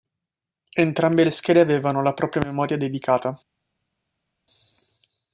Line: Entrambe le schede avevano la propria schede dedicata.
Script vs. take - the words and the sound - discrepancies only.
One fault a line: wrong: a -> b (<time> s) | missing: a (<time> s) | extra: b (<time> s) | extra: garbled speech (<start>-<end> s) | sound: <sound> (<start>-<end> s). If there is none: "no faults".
wrong: schede -> memoria (2.4 s)